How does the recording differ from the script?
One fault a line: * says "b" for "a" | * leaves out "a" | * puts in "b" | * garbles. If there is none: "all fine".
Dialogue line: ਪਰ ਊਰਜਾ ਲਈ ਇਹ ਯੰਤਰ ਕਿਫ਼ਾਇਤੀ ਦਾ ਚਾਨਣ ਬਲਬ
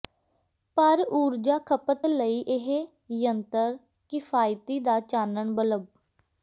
* puts in "ਖਪਤ"